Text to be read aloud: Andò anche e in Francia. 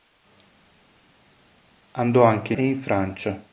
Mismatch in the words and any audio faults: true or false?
false